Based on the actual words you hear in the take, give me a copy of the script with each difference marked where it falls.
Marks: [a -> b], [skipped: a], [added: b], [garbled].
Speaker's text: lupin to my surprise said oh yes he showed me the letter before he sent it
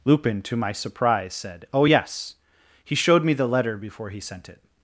lupin to my surprise said oh yes he showed me the letter before he sent it